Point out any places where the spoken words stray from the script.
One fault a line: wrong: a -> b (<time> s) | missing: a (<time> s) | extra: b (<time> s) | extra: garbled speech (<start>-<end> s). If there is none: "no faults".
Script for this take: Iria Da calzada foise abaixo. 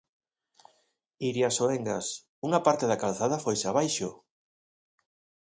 extra: Soengas unha parte (1.6 s)